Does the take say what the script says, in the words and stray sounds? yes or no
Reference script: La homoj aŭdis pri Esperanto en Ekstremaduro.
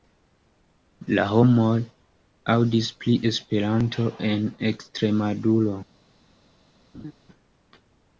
no